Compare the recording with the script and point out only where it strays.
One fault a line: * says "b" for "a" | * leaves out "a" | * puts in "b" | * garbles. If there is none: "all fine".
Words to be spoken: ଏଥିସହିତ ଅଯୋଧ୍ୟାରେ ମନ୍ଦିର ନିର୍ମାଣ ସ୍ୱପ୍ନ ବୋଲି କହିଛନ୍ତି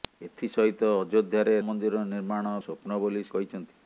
all fine